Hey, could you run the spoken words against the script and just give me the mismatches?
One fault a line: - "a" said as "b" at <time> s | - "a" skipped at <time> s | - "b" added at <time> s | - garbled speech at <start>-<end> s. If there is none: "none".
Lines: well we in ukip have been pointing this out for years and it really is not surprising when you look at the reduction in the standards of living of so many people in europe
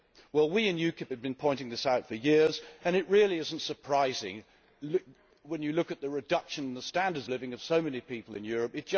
- "of" skipped at 7.3 s